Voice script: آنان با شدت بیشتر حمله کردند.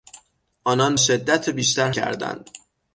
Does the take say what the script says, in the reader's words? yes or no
no